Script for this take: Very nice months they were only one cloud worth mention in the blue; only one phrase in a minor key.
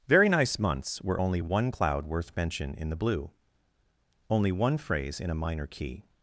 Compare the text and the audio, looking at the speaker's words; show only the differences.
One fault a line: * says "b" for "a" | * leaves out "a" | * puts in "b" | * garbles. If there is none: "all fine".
* leaves out "they"